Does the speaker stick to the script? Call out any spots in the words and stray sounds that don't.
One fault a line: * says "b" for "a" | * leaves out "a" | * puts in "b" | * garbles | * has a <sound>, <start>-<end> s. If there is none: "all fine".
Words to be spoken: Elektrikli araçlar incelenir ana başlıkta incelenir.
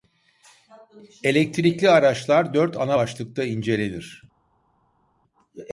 * says "dört" for "incelenir"